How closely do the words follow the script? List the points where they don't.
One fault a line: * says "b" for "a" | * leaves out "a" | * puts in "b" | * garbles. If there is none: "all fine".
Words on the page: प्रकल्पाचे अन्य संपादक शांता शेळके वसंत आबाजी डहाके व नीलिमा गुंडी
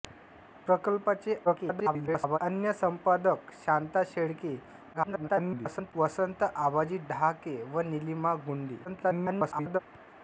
* garbles
* garbles
* garbles